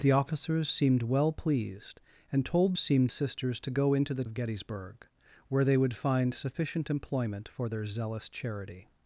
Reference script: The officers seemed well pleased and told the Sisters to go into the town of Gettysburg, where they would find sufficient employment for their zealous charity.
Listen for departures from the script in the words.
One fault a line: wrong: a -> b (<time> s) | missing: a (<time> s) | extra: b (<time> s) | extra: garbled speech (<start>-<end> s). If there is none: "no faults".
wrong: the -> seemed (2.8 s)
missing: town (4.2 s)